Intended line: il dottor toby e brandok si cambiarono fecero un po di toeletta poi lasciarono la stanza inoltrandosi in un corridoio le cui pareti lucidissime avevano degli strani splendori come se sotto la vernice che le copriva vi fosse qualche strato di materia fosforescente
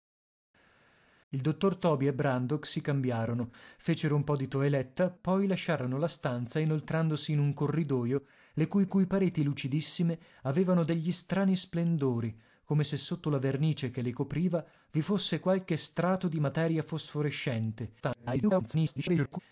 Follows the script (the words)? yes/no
no